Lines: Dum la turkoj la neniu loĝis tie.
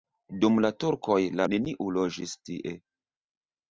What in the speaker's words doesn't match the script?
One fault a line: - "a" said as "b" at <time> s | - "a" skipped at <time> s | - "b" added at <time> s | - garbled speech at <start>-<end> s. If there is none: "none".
none